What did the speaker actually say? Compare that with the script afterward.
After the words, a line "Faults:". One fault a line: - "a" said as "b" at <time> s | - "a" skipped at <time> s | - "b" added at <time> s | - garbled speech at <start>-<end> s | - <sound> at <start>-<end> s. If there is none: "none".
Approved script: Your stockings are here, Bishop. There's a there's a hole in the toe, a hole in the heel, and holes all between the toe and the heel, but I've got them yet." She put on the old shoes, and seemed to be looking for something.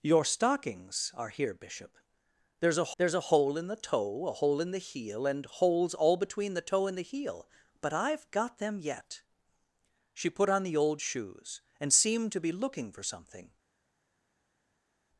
Your stockings are here, Bishop. There's a there's a hole in the toe, a hole in the heel, and holes all between the toe and the heel, but I've got them yet." She put on the old shoes, and seemed to be looking for something.
Faults:
none